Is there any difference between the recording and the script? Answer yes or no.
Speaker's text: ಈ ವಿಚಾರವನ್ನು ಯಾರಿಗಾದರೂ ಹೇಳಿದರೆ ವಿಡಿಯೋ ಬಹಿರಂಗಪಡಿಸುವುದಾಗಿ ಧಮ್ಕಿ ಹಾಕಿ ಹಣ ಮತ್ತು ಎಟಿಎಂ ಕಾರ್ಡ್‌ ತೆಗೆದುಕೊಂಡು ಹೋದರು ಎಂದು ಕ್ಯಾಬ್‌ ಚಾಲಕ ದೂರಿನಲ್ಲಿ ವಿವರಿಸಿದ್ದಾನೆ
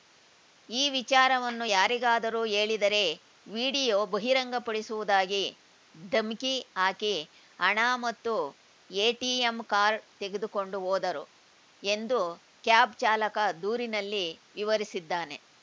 no